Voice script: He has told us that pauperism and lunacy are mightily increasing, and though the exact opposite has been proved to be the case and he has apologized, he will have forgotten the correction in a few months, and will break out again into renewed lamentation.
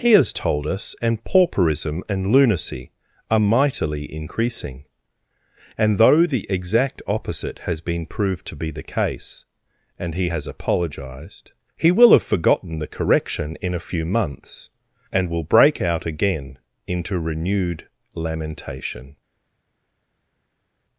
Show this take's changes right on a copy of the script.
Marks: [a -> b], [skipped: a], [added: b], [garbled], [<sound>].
He has told us [that -> and] pauperism and lunacy are mightily increasing, and though the exact opposite has been proved to be the case and he has apologized, he will have forgotten the correction in a few months, and will break out again into renewed lamentation.